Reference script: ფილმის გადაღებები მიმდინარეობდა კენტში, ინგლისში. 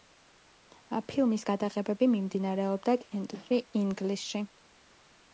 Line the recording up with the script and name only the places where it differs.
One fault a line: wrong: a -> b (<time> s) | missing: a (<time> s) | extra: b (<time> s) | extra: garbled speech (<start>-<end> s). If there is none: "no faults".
no faults